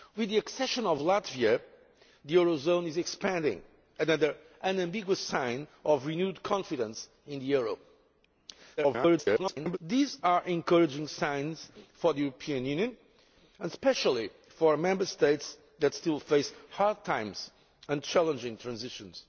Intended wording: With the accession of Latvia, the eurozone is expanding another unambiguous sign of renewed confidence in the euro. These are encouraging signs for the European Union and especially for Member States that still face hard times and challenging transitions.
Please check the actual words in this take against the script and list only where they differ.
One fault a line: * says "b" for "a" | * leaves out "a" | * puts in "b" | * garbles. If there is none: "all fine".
* garbles